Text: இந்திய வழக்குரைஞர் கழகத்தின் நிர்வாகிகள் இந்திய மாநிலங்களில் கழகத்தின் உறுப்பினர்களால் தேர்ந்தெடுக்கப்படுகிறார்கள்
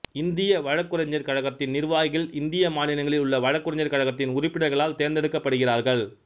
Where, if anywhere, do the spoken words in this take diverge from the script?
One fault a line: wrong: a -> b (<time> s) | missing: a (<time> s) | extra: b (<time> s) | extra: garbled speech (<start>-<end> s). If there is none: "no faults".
extra: உள்ள வழக்குரைஞர் (3.2 s)